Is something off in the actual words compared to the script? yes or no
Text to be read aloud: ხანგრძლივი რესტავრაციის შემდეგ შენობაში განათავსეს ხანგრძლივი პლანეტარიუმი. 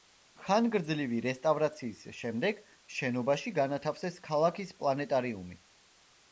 yes